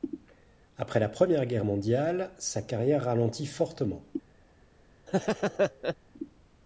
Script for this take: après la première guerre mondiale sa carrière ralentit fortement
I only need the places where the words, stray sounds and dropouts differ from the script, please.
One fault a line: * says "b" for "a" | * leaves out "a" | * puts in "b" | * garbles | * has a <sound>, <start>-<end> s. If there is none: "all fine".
* has a laugh, 5.1-6.0 s